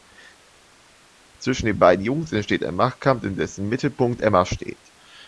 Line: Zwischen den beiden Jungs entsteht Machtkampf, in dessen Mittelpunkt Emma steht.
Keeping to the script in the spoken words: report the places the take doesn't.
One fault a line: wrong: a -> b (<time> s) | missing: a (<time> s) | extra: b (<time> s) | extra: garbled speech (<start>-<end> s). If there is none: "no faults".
extra: ein (2.6 s)